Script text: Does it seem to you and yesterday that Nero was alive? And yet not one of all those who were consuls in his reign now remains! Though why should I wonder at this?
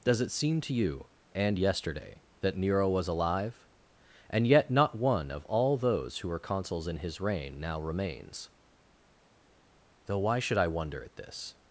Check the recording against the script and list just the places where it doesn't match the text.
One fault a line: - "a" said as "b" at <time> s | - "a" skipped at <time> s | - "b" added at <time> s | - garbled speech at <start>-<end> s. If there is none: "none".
none